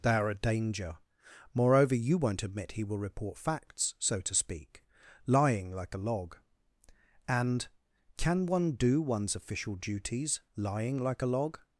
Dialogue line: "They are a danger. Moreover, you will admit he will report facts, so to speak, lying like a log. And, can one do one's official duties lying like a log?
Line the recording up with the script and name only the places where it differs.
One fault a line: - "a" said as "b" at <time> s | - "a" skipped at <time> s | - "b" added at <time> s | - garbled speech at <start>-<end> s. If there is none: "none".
- "will" said as "won't" at 2.2 s